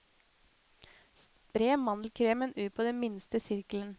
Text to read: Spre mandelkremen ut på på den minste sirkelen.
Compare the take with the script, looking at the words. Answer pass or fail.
fail